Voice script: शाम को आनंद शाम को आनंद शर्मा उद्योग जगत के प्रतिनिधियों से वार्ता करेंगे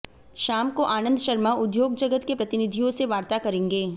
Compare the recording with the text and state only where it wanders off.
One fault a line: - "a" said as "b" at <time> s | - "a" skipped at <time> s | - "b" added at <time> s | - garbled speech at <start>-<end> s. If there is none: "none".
- "शाम को आनंद" skipped at 1.2 s